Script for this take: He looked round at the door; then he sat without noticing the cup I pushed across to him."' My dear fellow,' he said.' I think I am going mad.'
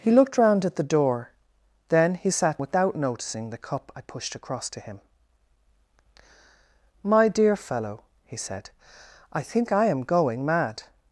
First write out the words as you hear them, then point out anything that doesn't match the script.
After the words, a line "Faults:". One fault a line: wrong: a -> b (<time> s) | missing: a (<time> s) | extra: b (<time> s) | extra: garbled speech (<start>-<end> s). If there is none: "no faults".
He looked round at the door; then he sat without noticing the cup I pushed across to him."' My dear fellow,' he said.' I think I am going mad.'
Faults:
no faults